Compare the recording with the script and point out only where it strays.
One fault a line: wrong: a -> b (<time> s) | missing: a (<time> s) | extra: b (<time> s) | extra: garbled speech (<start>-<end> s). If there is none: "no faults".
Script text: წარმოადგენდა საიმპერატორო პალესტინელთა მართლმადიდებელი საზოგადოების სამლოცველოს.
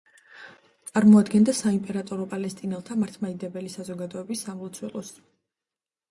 no faults